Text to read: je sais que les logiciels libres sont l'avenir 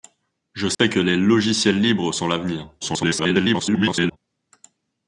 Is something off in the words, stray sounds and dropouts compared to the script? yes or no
yes